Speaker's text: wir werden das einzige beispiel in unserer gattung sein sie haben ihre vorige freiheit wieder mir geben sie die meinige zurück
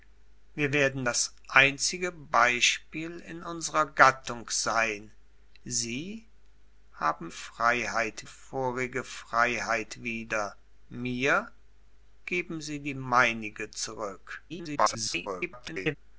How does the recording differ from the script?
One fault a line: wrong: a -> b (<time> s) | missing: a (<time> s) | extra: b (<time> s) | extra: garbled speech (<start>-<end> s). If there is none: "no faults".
wrong: ihre -> freiheit (7.3 s)
extra: garbled speech (14.5-16.0 s)